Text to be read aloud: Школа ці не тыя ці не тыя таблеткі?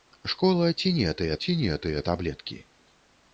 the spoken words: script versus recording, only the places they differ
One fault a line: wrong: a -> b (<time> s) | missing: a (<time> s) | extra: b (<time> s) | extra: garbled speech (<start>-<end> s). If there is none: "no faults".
no faults